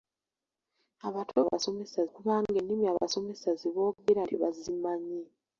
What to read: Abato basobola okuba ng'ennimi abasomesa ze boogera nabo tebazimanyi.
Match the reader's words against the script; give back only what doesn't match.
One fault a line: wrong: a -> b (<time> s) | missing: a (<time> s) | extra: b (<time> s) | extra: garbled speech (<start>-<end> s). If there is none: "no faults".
wrong: basobola -> abasomesa (1.4 s)
missing: nabo (4.2 s)